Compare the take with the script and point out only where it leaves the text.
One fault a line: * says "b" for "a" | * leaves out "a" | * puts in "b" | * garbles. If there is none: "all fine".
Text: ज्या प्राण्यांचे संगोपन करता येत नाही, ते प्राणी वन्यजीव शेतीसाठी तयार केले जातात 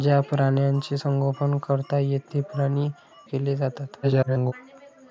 * leaves out "नाही"
* leaves out "वन्यजीव शेतीसाठी तयार"
* garbles